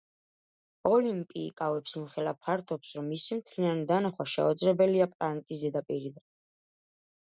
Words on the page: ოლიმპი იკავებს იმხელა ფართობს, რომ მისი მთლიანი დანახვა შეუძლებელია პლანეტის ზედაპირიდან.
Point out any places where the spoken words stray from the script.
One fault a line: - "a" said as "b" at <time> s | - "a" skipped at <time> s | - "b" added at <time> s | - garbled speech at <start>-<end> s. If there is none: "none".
none